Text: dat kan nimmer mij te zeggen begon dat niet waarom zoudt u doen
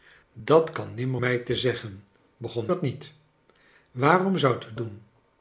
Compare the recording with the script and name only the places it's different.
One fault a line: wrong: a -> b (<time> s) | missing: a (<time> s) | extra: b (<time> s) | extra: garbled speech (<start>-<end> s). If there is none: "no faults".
no faults